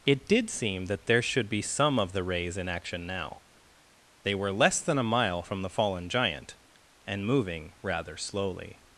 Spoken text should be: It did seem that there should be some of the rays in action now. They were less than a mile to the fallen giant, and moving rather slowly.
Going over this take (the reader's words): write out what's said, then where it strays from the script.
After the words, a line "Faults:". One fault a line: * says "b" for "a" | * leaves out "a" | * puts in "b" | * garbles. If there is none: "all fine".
It did seem that there should be some of the rays in action now. They were less than a mile from the fallen giant, and moving rather slowly.
Faults:
* says "from" for "to"